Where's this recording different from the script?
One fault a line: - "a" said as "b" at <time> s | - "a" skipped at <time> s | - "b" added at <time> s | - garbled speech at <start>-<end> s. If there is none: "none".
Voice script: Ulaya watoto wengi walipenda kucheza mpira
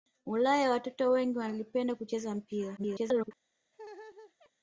- garbled speech at 2.8-3.3 s